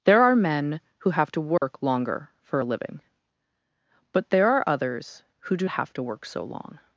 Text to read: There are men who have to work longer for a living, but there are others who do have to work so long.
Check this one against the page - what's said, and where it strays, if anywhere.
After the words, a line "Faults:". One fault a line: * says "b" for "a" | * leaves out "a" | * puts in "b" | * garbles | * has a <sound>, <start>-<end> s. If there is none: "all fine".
There are men who have to work longer for a living, but there are others who do have to work so long.
Faults:
* has a dropout, 1.6-1.6 s